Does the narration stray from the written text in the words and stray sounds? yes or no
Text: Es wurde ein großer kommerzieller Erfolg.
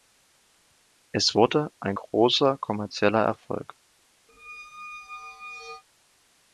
yes